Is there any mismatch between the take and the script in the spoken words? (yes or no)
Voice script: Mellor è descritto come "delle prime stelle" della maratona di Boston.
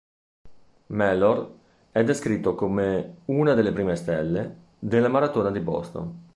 yes